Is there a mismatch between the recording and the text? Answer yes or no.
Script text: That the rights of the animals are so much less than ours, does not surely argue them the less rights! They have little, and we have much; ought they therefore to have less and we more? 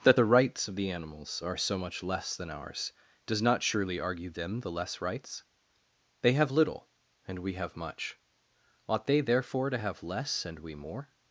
no